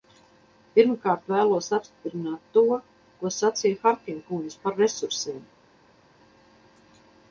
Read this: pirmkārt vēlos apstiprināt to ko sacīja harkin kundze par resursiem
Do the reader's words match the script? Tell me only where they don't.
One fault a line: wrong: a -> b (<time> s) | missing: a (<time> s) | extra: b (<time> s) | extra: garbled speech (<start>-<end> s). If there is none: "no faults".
no faults